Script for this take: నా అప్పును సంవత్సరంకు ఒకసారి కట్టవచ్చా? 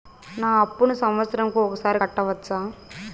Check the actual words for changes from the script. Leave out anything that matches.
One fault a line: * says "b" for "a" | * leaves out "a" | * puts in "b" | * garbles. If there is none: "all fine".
all fine